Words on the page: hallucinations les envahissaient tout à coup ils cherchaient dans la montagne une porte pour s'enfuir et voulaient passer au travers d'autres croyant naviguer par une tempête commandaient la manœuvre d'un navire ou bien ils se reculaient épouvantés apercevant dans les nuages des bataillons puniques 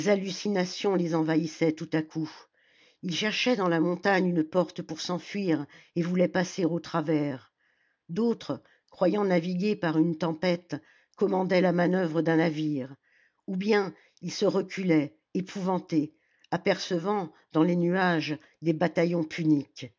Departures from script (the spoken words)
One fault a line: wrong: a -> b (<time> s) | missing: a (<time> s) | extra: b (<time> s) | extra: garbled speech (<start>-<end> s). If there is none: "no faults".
no faults